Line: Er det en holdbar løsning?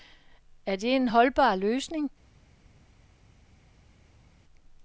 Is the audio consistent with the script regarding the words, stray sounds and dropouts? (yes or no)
yes